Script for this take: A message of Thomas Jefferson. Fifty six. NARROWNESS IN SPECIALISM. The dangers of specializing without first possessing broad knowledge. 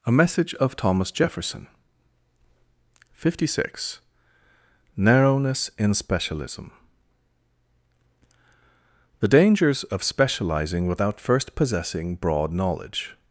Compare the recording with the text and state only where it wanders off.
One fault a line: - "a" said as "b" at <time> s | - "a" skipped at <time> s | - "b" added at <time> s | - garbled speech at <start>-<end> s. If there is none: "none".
none